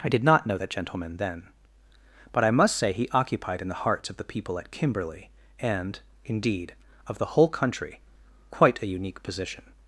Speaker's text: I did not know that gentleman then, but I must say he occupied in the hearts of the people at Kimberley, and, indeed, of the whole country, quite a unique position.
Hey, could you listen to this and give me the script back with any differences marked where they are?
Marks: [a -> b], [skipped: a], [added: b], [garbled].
I did not know that gentleman then, but I must say he occupied in the hearts of the people at Kimberley, and, indeed, of the whole country, quite a unique position.